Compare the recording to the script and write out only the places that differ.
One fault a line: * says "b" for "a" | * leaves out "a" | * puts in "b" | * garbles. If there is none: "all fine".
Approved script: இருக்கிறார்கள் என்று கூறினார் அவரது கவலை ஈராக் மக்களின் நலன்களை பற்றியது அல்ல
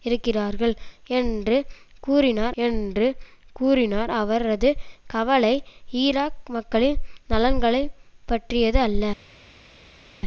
* puts in "என்று கூறினார்"